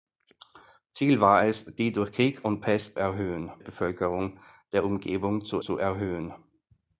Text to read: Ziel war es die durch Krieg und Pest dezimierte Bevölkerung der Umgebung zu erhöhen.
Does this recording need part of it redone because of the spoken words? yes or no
yes